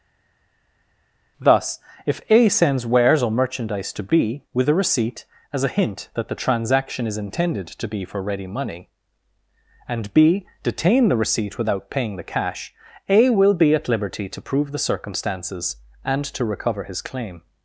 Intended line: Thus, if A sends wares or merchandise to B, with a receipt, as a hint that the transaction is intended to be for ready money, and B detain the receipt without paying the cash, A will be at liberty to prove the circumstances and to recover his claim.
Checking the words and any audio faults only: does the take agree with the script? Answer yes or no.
yes